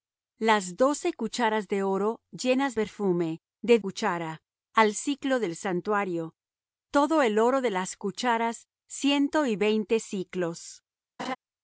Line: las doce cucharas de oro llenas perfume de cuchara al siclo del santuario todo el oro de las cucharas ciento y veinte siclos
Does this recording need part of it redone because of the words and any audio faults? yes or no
yes